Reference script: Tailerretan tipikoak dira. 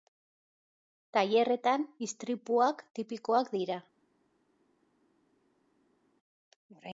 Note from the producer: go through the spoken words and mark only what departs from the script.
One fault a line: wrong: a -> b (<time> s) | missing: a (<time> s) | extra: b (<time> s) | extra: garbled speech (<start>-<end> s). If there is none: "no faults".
extra: istripuak (2.1 s)